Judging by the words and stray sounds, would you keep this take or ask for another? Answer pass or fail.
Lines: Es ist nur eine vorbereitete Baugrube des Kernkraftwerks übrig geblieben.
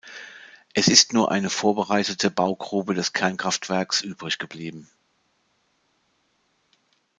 pass